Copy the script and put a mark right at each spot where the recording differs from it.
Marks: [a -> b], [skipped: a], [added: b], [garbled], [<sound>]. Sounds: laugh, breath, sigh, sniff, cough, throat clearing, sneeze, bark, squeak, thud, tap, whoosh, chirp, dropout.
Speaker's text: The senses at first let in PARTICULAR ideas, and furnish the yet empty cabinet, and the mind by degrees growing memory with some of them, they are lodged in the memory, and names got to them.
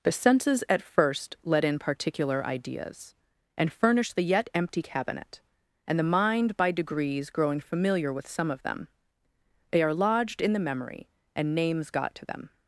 The senses at first let in PARTICULAR ideas, and furnish the yet empty cabinet, and the mind by degrees growing [memory -> familiar] with some of them, they are lodged in the memory, and names got to them.